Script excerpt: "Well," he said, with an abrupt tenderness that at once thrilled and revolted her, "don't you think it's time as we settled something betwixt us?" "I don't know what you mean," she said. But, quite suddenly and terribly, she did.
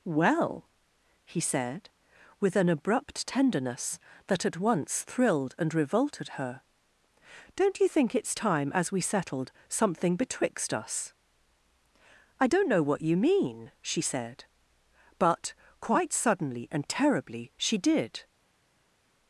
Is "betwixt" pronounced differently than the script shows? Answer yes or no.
no